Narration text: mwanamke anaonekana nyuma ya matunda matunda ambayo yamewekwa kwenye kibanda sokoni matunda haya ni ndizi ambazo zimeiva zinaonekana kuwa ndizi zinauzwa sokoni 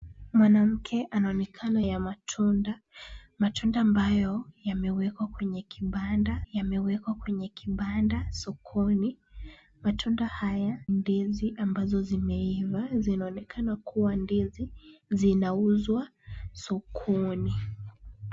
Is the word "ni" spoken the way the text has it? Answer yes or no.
no